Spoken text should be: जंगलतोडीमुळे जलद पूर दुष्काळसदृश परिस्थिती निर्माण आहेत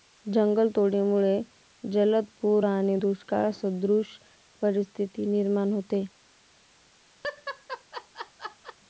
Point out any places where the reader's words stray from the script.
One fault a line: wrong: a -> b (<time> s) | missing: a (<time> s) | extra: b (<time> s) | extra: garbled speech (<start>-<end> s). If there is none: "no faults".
extra: आणि (2.6 s)
wrong: आहेत -> होते (5.7 s)